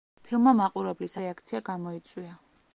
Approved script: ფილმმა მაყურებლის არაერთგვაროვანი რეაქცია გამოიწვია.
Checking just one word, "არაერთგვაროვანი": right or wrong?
wrong